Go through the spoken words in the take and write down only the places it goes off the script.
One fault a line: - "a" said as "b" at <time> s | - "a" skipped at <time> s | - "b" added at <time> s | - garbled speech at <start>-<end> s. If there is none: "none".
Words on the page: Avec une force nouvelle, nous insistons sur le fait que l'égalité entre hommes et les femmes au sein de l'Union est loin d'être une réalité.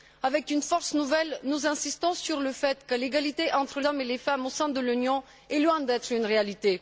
none